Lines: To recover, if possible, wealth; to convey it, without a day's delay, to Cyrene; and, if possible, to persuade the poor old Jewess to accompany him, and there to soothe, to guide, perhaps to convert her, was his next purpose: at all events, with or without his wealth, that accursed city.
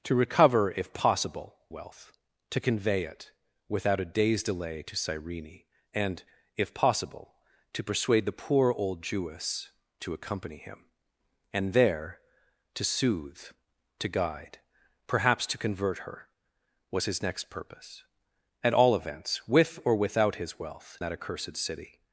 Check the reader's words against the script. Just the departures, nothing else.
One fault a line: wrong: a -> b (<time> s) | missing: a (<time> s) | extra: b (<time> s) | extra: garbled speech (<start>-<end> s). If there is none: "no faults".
no faults